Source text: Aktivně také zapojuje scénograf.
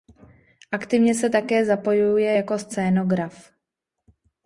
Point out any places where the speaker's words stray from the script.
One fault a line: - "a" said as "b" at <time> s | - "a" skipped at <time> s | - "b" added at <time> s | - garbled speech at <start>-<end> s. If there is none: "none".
- "se" added at 1.1 s
- "jako" added at 2.3 s